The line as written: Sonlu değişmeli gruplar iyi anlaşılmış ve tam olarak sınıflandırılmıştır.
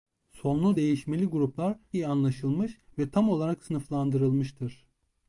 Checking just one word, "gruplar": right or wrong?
right